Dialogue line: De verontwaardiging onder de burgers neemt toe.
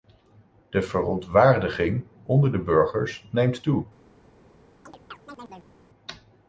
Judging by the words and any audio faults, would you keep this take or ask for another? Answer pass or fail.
fail